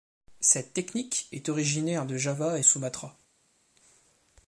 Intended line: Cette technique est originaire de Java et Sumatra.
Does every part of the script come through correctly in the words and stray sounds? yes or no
yes